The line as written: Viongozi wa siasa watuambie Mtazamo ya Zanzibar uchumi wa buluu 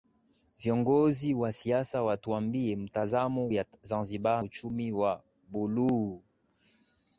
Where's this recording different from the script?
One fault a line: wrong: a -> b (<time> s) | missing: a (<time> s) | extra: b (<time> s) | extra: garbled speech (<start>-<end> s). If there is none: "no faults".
no faults